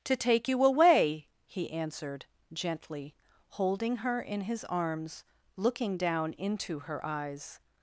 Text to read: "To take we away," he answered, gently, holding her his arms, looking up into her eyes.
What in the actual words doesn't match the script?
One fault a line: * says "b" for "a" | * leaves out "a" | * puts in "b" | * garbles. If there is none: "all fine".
* says "you" for "we"
* puts in "in"
* says "down" for "up"